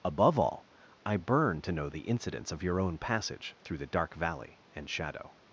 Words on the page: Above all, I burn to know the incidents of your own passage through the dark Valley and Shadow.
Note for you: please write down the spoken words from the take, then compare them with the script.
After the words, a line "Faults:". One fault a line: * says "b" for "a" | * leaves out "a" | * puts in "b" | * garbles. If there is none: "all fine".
Above all, I burn to know the incidents of your own passage through the dark Valley and Shadow.
Faults:
all fine